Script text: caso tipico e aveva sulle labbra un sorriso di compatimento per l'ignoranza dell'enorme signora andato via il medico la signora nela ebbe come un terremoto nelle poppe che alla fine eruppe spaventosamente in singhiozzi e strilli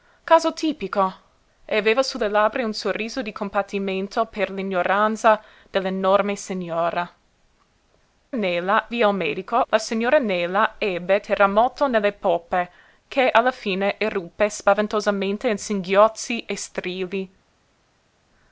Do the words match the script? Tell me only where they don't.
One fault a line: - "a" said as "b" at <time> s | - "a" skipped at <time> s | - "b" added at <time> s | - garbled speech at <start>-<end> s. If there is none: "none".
- "andato" said as "nela" at 8.3 s
- "come un" skipped at 11.2 s